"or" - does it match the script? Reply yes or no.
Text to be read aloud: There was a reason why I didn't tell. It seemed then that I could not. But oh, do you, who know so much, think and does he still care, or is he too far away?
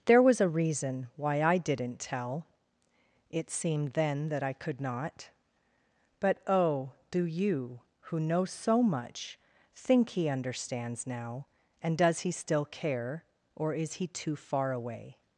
yes